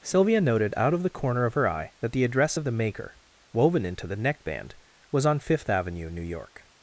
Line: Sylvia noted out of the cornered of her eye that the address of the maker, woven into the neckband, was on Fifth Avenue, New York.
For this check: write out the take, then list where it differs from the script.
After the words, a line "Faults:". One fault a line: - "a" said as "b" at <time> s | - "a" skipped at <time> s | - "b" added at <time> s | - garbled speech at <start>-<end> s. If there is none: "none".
Sylvia noted out of the corner of her eye that the address of the maker, woven into the neckband, was on Fifth Avenue, New York.
Faults:
- "cornered" said as "corner" at 1.1 s